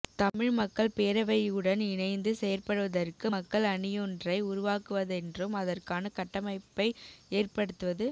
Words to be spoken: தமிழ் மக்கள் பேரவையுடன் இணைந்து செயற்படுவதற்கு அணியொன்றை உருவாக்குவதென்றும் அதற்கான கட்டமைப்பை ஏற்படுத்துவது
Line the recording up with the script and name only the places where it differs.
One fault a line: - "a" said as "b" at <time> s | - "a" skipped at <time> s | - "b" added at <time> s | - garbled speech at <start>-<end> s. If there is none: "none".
- "மக்கள்" added at 3.3 s